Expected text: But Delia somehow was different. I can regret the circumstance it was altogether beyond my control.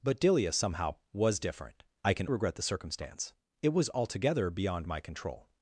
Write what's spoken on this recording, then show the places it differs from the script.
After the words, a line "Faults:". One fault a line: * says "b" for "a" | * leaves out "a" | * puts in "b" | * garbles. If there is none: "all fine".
But Delia somehow was different. I can regret the circumstance it was altogether beyond my control.
Faults:
all fine